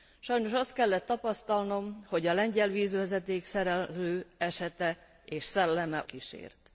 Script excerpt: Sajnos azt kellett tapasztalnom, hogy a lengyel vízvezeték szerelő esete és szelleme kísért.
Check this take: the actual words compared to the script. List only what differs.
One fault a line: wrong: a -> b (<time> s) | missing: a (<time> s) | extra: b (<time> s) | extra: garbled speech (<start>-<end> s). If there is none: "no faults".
no faults